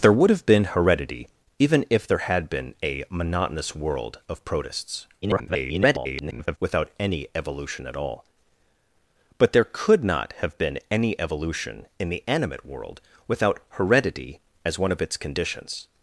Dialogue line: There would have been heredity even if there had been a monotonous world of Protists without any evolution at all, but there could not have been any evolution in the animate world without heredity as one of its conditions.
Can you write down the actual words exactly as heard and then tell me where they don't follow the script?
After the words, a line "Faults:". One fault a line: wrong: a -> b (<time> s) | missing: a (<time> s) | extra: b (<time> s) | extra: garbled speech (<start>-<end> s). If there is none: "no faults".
There would have been heredity even if there had been a monotonous world of Protists [garbled] without any evolution at all, but there could not have been any evolution in the animate world without heredity as one of its conditions.
Faults:
extra: garbled speech (5.2-6.6 s)